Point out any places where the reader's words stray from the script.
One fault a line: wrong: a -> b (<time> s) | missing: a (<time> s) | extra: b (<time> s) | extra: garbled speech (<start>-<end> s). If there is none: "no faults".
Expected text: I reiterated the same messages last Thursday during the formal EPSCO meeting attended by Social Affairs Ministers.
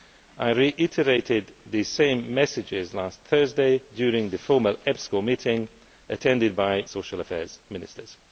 no faults